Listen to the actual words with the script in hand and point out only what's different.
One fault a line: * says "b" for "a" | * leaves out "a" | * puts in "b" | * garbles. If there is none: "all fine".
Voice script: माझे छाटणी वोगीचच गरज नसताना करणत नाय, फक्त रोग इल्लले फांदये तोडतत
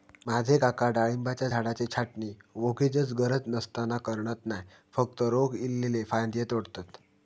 * puts in "काका डाळिंबाच्या झाडाची"